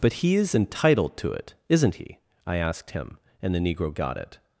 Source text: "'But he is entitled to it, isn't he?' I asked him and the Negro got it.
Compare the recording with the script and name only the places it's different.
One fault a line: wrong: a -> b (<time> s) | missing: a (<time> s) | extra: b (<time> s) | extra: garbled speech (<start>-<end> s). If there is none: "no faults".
no faults